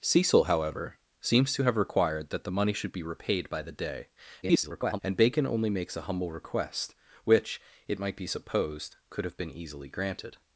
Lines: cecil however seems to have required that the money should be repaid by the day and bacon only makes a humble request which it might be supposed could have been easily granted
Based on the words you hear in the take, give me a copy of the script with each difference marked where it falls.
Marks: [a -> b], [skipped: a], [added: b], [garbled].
cecil however seems to have required that the money should be repaid by the day [garbled] and bacon only makes a humble request which it might be supposed could have been easily granted